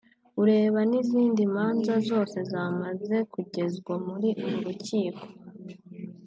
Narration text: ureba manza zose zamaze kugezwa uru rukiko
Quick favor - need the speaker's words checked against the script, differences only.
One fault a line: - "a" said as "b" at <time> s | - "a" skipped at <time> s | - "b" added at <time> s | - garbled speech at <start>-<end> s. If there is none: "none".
- "n'izindi" added at 0.9 s
- "muri" added at 4.1 s